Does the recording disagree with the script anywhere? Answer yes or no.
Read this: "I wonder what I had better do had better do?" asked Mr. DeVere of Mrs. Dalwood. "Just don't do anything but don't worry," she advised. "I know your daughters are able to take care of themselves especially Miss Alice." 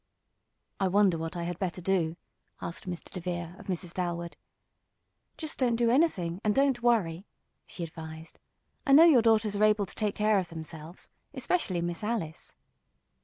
yes